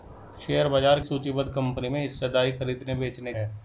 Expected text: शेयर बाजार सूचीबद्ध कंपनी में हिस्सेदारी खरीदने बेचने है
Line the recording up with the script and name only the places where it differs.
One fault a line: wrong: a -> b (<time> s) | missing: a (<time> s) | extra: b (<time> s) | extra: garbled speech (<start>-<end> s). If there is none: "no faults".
no faults